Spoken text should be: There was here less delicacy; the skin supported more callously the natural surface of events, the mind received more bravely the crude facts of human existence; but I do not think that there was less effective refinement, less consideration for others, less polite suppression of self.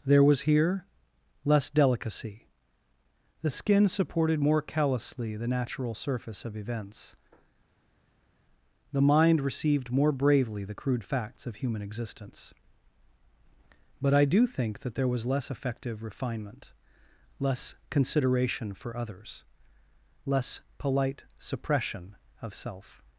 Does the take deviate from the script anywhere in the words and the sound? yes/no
yes